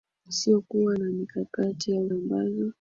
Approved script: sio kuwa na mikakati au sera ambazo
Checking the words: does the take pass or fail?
fail